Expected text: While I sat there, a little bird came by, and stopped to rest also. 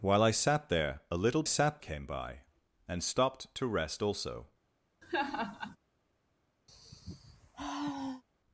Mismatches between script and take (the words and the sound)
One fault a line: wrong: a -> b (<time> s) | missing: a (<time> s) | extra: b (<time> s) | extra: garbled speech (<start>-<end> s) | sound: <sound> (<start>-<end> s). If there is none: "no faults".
wrong: bird -> sat (1.4 s)
sound: laugh (5.0-5.8 s)
sound: sigh (6.7-8.2 s)